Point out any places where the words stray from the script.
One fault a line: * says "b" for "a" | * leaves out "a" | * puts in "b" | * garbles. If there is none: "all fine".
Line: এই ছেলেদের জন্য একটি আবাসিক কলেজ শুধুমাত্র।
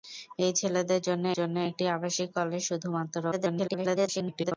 * puts in "জন্য"
* garbles